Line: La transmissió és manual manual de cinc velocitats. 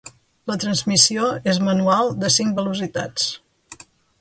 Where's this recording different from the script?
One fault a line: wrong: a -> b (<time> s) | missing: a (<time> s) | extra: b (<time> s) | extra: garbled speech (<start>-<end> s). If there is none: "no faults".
missing: manual (2.1 s)